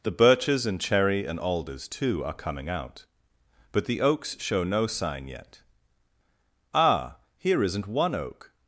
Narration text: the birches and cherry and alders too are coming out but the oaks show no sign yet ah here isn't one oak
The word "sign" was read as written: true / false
true